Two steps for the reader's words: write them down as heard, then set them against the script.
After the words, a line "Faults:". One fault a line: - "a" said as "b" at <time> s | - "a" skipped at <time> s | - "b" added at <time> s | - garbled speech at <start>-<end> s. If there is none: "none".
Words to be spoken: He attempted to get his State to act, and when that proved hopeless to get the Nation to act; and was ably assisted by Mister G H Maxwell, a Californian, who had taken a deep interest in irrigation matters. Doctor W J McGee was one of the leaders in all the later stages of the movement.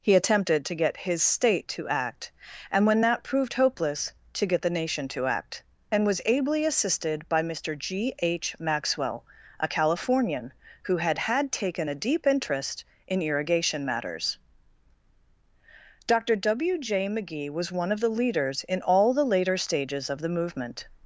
He attempted to get his State to act, and when that proved hopeless to get the Nation to act; and was ably assisted by Mister G H Maxwell, a Californian, who had had taken a deep interest in irrigation matters. Doctor W J McGee was one of the leaders in all the later stages of the movement.
Faults:
- "had" added at 11.2 s